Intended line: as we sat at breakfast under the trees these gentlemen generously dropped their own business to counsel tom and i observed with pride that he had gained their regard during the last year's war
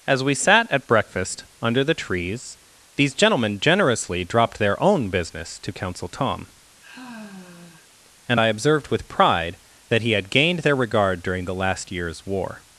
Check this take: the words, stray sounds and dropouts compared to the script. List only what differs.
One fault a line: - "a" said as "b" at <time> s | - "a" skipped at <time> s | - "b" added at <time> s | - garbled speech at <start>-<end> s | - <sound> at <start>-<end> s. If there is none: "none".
- sigh at 6.8-7.9 s